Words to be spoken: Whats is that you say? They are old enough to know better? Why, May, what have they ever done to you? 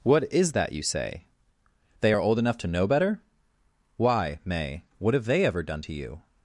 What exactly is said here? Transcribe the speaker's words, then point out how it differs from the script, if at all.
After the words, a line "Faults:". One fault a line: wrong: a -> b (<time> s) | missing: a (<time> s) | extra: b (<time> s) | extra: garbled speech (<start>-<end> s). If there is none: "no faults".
What is that you say? They are old enough to know better? Why, May, what have they ever done to you?
Faults:
wrong: Whats -> What (0.0 s)